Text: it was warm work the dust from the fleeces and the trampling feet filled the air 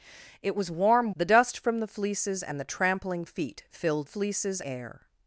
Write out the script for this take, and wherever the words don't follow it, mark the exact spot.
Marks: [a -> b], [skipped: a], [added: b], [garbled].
it was warm [skipped: work] the dust from the fleeces and the trampling feet filled [the -> fleeces] air